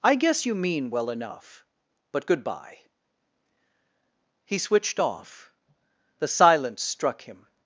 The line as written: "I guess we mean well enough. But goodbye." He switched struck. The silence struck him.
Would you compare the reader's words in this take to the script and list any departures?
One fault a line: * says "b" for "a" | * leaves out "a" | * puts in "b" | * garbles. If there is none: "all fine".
* says "you" for "we"
* says "off" for "struck"